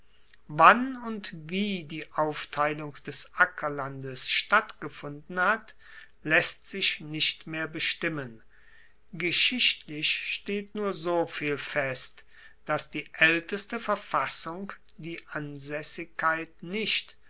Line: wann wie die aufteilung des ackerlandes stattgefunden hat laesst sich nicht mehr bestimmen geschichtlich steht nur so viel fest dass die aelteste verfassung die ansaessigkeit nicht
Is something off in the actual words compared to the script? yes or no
yes